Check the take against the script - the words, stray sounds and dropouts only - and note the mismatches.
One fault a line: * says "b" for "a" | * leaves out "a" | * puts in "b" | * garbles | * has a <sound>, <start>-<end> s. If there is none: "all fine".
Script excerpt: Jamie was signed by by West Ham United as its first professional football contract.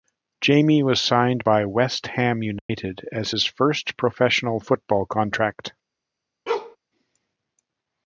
* leaves out "by"
* has a dropout, 2.6-2.7 s
* says "his" for "its"
* has a bark, 6.5-6.8 s